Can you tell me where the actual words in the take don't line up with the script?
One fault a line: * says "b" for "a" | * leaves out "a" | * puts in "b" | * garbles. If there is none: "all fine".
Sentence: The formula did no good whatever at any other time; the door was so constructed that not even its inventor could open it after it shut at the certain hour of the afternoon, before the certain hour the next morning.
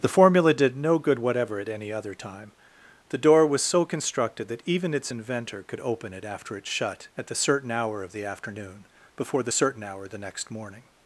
* leaves out "not"